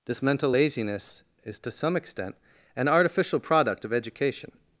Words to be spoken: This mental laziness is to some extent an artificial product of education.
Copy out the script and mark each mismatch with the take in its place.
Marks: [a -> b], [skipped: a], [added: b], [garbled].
This mental laziness is to some extent an artificial product of education.